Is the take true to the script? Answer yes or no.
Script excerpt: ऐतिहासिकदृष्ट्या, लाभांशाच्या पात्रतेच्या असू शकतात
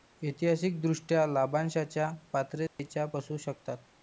yes